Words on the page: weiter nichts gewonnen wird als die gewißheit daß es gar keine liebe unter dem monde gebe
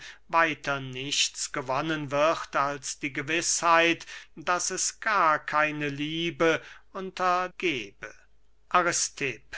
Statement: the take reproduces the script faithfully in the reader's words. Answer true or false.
false